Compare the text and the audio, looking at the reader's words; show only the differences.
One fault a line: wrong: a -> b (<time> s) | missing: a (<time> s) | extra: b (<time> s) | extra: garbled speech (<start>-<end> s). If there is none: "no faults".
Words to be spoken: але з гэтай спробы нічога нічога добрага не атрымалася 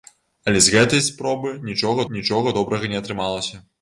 no faults